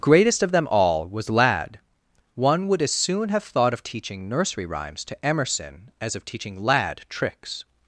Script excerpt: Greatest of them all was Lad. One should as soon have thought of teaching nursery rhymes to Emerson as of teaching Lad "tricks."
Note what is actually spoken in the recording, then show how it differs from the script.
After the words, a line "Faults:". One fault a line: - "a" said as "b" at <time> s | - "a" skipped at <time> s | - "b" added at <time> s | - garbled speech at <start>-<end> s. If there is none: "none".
Greatest of them all was Lad. One would as soon have thought of teaching nursery rhymes to Emerson as of teaching Lad "tricks."
Faults:
- "should" said as "would" at 2.7 s